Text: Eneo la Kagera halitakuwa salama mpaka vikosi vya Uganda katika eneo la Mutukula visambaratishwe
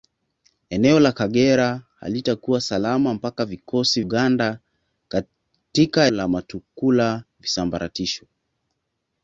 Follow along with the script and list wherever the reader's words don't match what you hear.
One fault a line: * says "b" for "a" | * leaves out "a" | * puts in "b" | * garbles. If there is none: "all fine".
* leaves out "vya"
* leaves out "eneo"